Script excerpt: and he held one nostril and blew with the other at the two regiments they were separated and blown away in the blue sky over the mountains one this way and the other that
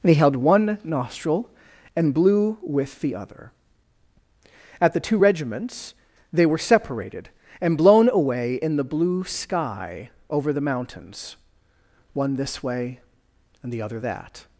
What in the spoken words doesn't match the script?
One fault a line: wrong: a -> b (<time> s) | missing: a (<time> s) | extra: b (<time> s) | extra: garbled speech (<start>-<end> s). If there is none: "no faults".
wrong: and he -> they (0.0 s)